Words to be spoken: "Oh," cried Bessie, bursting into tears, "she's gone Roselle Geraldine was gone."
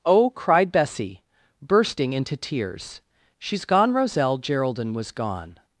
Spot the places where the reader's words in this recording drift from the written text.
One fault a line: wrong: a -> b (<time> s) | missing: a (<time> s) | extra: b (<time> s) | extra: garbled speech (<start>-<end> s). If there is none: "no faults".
no faults